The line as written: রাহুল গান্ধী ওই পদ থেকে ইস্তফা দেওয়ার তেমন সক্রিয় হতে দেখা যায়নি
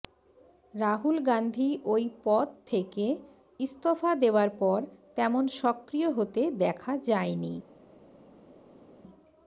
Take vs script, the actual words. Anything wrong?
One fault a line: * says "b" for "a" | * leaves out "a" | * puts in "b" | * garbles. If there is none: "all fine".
* puts in "পর"